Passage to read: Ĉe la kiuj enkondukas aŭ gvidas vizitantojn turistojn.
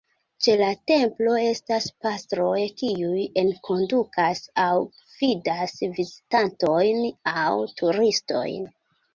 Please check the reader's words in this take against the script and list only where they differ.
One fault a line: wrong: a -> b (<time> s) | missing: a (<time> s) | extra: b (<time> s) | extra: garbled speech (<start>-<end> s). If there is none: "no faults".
extra: templo estas pastroj (0.9 s)
extra: aŭ (7.4 s)